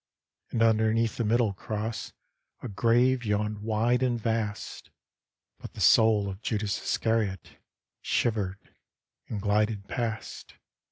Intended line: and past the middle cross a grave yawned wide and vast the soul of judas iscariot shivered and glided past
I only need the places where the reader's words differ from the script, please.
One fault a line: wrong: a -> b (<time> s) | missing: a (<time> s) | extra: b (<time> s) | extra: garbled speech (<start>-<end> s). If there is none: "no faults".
wrong: past -> underneath (0.6 s)
extra: but (5.6 s)